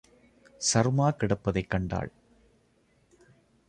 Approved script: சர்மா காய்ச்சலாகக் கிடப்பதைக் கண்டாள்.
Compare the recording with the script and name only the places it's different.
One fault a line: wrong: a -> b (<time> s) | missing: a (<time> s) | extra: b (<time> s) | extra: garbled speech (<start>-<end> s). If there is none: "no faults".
missing: காய்ச்சலாகக் (1.1 s)